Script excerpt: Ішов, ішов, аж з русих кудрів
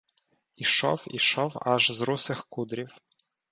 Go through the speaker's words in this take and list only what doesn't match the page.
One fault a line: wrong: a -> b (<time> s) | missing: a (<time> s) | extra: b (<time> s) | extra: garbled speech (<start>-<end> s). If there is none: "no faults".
no faults